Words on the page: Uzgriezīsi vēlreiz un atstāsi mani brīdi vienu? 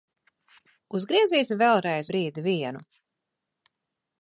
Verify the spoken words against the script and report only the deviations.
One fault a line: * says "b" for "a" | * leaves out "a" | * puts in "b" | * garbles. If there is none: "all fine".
* leaves out "un atstāsi mani"